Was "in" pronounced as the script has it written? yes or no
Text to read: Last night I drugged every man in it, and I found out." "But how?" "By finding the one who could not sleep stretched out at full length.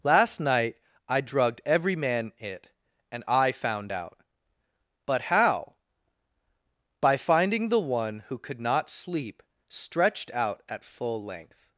no